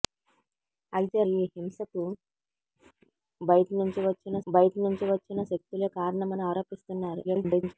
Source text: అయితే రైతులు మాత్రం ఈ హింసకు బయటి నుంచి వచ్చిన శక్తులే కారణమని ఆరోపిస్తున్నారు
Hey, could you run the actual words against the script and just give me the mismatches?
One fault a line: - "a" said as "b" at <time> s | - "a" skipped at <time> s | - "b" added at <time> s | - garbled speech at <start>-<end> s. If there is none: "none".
- "రైతులు మాత్రం ఈ హింసకు" said as "ఈ హింసకు బయటి నుంచి వచ్చిన" at 1.3 s
- garbled speech at 7.2-7.7 s